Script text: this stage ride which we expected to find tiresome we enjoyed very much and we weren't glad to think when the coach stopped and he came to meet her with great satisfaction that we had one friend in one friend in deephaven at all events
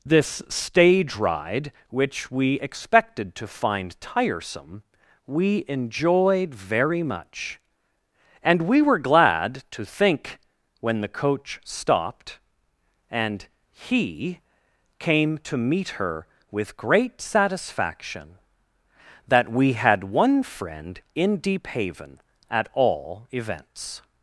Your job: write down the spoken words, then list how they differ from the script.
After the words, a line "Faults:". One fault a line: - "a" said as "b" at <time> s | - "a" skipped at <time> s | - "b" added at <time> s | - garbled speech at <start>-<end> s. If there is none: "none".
this stage ride which we expected to find tiresome we enjoyed very much and we were glad to think when the coach stopped and he came to meet her with great satisfaction that we had one friend in deephaven at all events
Faults:
- "weren't" said as "were" at 8.8 s
- "one friend in" skipped at 21.4 s